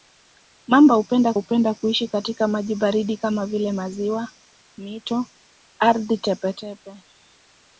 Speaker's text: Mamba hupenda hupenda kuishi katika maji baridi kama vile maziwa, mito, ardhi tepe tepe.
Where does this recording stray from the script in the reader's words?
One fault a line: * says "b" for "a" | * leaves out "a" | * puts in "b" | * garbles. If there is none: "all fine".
all fine